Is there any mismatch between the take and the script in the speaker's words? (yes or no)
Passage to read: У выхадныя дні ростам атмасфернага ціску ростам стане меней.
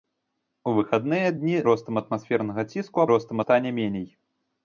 no